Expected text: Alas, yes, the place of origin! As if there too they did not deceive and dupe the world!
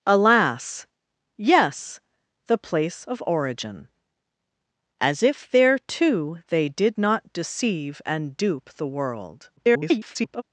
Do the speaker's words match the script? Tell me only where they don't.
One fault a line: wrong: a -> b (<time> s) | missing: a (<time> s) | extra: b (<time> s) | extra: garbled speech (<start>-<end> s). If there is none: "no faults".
extra: garbled speech (9.6-10.4 s)